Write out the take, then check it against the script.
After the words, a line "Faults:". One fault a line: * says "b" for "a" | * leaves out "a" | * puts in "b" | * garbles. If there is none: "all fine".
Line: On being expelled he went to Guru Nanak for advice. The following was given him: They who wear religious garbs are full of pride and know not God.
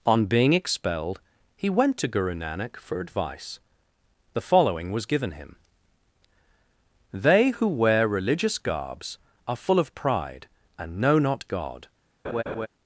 On being expelled he went to Guru Nanak for advice. The following was given him: They who wear religious garbs are full of pride and know not God.
Faults:
all fine